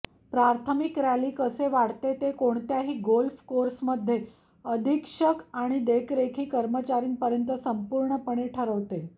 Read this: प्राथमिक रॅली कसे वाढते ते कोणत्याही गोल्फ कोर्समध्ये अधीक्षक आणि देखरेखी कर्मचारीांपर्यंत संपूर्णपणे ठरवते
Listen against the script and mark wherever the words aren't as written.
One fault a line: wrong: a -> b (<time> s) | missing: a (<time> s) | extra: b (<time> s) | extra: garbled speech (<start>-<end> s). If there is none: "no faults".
no faults